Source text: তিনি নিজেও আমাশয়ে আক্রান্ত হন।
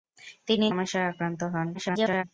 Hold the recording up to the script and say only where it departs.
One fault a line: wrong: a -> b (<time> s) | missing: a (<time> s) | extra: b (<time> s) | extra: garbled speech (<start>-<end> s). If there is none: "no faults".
missing: নিজেও (0.7 s)
extra: garbled speech (1.7-2.2 s)